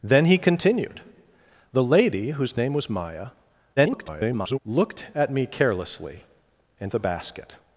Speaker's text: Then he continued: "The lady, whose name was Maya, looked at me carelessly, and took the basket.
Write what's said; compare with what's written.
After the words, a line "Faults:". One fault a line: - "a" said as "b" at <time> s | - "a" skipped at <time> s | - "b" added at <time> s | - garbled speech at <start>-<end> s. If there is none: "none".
Then he continued: "The lady, whose name was Maya, [garbled] looked at me carelessly, and the basket.
Faults:
- garbled speech at 3.8-4.6 s
- "took" skipped at 6.9 s